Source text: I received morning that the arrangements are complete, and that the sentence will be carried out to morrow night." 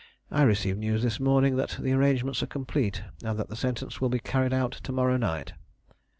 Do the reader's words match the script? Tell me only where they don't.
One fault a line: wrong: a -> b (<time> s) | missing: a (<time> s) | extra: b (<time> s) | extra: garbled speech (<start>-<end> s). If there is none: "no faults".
extra: news this (0.8 s)